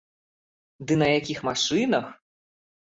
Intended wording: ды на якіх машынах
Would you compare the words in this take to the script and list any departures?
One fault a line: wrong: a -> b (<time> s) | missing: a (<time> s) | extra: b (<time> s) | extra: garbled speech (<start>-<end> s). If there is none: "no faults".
no faults